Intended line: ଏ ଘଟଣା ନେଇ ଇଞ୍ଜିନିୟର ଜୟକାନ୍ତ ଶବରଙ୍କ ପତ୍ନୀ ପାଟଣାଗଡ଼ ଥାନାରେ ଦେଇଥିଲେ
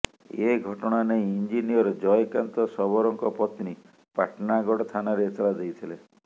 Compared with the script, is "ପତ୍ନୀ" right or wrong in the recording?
right